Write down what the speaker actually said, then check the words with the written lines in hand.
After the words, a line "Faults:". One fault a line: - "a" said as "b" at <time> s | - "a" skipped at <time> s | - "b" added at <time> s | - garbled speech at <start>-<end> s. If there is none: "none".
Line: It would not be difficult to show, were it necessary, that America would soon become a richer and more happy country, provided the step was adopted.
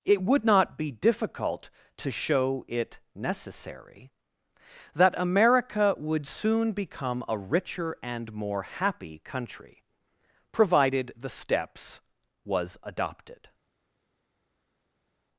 It would not be difficult to show, it necessary, that America would soon become a richer and more happy country, provided the steps was adopted.
Faults:
- "were" skipped at 2.6 s
- "step" said as "steps" at 11.3 s